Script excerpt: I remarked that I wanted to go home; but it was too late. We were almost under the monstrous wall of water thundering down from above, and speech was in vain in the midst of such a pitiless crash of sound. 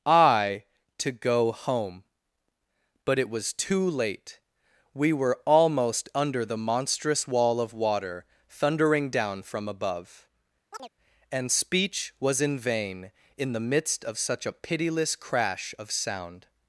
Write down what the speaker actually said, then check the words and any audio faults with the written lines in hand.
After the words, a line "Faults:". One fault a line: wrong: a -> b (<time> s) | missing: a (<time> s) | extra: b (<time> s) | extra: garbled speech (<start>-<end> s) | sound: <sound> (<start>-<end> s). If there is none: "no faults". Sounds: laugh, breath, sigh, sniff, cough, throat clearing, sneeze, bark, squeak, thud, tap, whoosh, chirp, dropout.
I to go home; but it was too late. We were almost under the monstrous wall of water thundering down from above, and speech was in vain in the midst of such a pitiless crash of sound.
Faults:
missing: remarked that I wanted (0.6 s)
sound: chirp (10.7-10.9 s)